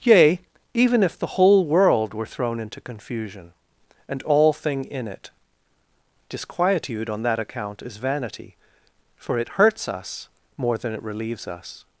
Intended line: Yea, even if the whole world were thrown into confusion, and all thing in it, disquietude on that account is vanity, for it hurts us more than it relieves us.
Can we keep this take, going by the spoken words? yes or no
yes